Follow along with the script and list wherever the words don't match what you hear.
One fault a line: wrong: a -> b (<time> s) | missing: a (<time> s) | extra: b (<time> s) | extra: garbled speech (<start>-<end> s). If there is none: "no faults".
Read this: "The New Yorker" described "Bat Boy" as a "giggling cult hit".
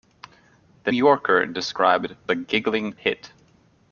missing: New (0.9 s)
missing: Bat Boy as (2.2 s)
missing: cult (2.9 s)